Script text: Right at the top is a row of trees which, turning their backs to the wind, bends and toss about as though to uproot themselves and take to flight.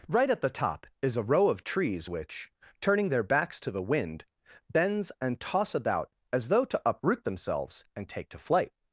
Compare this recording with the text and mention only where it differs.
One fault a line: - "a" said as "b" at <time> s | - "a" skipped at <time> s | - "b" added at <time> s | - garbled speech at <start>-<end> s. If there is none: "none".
none